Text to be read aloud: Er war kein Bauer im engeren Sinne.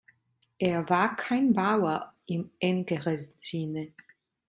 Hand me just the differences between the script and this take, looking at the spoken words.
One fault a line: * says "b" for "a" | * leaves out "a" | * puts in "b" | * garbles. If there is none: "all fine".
all fine